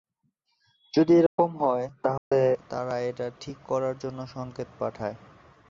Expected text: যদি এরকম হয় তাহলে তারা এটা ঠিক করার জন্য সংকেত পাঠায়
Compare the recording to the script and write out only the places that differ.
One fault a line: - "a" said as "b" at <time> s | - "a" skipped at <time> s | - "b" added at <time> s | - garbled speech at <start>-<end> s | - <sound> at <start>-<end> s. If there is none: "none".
- dropout at 1.3-1.4 s
- dropout at 2.2-2.3 s